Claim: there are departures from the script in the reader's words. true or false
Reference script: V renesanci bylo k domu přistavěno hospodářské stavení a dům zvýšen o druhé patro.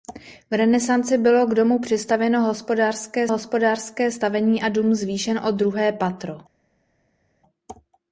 true